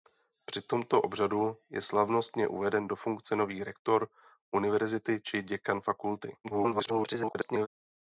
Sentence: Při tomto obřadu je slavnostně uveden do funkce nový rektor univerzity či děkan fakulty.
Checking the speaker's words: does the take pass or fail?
fail